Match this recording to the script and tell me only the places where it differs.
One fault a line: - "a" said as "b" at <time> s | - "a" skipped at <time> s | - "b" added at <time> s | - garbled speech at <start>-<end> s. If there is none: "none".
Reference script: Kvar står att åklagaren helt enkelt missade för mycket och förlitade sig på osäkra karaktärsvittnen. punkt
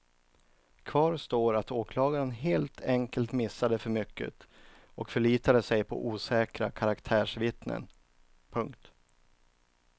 none